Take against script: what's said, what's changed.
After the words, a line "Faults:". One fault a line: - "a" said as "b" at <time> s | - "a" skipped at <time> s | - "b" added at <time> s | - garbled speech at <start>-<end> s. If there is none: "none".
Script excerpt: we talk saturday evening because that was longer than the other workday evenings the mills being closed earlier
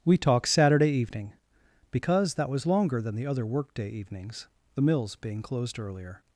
we talk saturday evening because that was longer than the other workday evenings the mills being closed earlier
Faults:
none